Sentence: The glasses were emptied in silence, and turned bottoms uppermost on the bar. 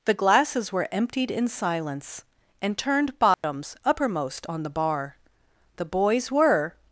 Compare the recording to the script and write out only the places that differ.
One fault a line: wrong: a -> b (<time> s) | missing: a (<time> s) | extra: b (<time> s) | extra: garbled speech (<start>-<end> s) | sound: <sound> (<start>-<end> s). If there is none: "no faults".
sound: dropout (3.3-3.4 s)
extra: The boys were (5.8 s)